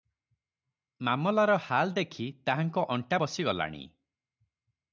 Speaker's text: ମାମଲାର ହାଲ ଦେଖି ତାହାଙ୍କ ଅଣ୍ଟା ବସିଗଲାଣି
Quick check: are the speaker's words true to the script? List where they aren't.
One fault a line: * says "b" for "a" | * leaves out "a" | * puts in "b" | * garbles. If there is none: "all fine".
all fine